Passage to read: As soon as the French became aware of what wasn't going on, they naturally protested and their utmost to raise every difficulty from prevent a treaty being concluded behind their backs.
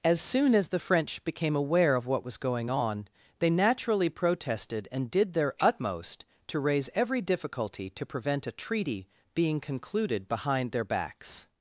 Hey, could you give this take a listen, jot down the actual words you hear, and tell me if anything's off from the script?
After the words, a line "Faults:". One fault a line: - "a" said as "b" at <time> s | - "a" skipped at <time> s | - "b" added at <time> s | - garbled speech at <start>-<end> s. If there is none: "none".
As soon as the French became aware of what was going on, they naturally protested and did their utmost to raise every difficulty to prevent a treaty being concluded behind their backs.
Faults:
- "wasn't" said as "was" at 2.2 s
- "did" added at 5.1 s
- "from" said as "to" at 7.9 s